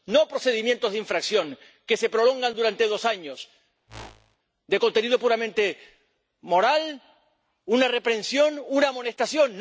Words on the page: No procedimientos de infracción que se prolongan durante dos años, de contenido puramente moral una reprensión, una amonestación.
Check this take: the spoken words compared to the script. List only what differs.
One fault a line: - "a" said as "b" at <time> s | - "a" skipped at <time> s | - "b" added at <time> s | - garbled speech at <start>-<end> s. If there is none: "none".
none